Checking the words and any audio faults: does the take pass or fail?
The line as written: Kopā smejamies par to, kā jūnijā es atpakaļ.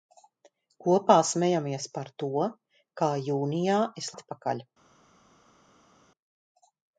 pass